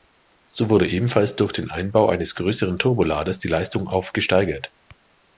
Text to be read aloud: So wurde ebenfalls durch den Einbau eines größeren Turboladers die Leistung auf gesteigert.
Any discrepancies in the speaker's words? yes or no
no